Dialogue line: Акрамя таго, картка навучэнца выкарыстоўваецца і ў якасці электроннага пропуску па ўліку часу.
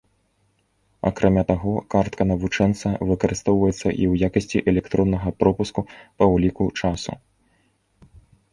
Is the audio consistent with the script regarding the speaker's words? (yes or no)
yes